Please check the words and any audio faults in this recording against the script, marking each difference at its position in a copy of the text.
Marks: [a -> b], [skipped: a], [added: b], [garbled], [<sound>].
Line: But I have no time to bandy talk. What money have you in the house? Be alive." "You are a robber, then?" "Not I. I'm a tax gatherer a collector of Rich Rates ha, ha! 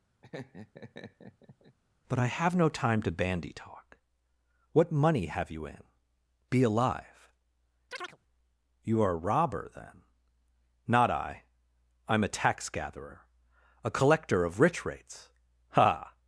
[laugh] But I have no time to bandy talk. What money have you in [skipped: the house?] Be alive." [chirp] "You are a robber, then?" "Not I. I'm a tax gatherer a collector of Rich Rates ha, ha!